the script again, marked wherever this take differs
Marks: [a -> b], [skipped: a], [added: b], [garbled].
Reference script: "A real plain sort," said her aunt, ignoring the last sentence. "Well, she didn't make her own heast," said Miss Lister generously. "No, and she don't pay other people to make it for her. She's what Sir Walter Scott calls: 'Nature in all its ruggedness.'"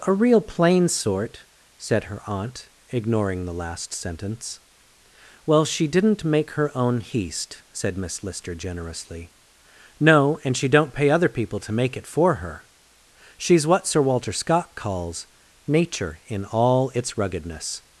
"A real plain sort," said her aunt, ignoring the last sentence. "Well, she didn't make her own heast," said Miss Lister generously. "No, and she don't pay other people to make it for her. She's what Sir Walter Scott calls: 'Nature in all its ruggedness.'"